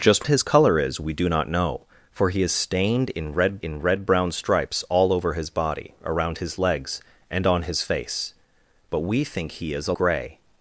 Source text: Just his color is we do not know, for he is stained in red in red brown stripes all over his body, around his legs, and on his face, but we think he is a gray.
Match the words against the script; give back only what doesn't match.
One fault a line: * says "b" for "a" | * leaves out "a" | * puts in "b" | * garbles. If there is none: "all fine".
all fine